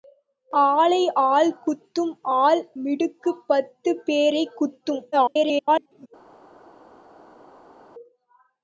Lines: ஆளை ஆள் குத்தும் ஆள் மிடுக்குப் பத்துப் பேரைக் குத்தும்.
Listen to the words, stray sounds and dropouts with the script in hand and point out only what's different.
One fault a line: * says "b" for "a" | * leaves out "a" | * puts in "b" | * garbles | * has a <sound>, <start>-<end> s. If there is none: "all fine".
* garbles